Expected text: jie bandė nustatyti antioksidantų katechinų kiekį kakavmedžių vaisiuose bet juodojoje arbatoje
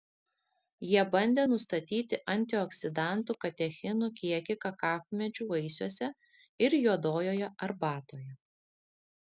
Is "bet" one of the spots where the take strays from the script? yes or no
yes